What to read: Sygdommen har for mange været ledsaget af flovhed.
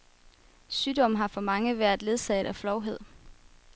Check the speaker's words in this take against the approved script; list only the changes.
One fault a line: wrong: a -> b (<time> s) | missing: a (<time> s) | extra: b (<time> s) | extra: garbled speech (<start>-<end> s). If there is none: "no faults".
no faults